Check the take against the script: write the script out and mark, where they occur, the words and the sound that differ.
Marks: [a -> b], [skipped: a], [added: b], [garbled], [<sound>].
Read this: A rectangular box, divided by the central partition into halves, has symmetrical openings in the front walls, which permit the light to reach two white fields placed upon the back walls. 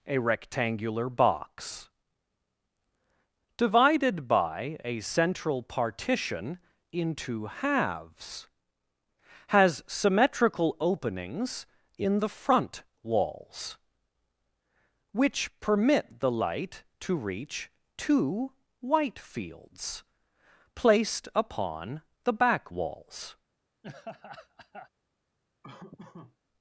A rectangular box, divided by [the -> a] central partition into halves, has symmetrical openings in the front walls, which permit the light to reach two white fields placed upon the back walls. [laugh] [laugh]